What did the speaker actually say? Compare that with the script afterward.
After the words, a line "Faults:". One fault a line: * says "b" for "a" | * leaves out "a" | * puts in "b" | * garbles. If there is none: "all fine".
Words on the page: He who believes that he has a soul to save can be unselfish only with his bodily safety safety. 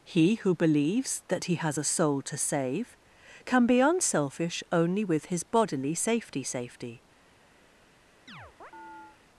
He who believes that he has a soul to save can be unselfish only with his bodily safety safety.
Faults:
all fine